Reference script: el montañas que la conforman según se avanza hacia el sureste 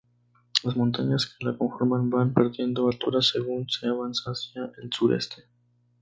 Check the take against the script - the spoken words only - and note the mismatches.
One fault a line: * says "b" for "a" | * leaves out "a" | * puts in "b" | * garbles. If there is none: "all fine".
* says "las" for "el"
* puts in "van perdiendo altura"